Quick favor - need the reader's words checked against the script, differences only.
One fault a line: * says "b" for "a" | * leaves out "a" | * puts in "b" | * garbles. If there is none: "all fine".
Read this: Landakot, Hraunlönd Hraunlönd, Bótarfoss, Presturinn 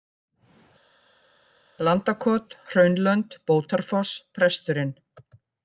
* leaves out "Hraunlönd"